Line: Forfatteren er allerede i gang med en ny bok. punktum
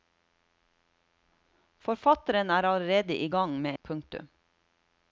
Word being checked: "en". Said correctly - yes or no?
no